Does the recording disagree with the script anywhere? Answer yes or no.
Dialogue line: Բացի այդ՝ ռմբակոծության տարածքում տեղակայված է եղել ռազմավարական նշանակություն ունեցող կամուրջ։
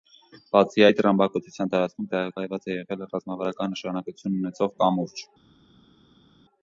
no